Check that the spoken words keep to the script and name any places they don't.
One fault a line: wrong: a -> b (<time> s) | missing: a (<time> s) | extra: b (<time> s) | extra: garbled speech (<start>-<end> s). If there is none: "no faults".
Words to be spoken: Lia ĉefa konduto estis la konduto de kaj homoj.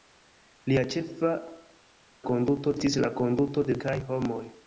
no faults